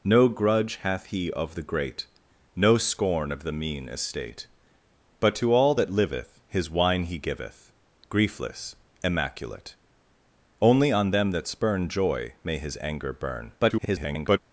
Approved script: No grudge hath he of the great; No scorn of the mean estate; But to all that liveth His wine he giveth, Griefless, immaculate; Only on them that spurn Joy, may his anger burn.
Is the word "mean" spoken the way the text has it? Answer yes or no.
yes